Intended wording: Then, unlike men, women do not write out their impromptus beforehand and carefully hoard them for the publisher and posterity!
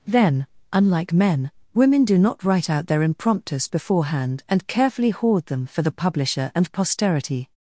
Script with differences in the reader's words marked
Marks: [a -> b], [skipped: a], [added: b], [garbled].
Then, unlike men, women do not write out their impromptus beforehand and carefully hoard them for the publisher and posterity!